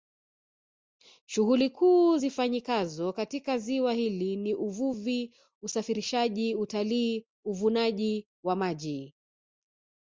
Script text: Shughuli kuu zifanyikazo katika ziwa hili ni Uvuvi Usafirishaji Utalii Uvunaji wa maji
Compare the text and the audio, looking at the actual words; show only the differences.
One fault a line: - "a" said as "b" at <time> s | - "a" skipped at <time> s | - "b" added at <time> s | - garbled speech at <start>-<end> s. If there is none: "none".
none